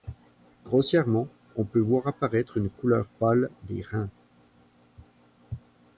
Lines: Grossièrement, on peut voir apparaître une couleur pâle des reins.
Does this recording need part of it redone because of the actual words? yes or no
no